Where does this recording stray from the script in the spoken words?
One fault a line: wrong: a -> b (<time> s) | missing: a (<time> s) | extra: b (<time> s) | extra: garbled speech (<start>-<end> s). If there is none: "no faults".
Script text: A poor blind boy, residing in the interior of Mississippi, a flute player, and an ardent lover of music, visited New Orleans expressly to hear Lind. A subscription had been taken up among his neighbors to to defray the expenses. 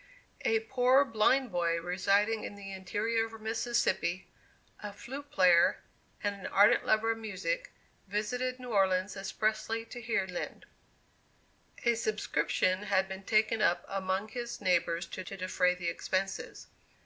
no faults